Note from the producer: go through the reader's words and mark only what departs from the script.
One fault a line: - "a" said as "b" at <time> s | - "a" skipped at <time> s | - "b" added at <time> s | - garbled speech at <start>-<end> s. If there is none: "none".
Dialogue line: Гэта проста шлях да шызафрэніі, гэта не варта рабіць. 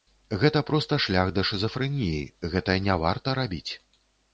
none